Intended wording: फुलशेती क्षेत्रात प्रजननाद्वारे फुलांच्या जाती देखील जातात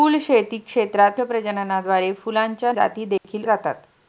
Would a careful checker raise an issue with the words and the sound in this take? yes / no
yes